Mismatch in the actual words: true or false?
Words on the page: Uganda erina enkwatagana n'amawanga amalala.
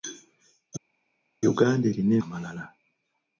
true